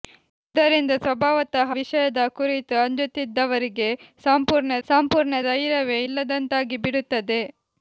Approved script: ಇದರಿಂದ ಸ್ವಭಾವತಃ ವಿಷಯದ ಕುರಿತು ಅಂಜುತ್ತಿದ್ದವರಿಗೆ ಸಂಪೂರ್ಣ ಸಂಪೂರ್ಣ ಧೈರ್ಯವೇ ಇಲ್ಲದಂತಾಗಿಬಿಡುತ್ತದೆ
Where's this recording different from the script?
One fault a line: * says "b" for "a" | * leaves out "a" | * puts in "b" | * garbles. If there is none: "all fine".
all fine